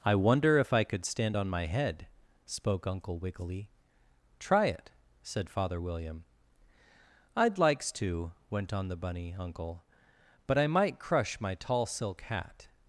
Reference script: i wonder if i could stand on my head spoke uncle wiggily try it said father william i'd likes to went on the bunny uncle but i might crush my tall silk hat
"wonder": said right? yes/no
yes